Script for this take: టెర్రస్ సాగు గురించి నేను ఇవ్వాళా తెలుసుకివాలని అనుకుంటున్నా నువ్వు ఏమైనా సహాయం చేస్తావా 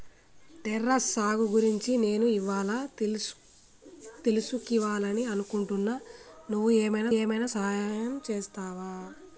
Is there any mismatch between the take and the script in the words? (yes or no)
yes